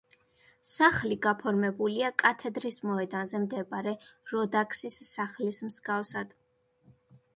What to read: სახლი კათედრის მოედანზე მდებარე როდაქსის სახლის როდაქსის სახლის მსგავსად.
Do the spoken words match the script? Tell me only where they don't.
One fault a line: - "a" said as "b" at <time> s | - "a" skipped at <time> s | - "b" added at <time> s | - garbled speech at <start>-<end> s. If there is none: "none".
- "გაფორმებულია" added at 1.2 s
- "როდაქსის სახლის" skipped at 5.6 s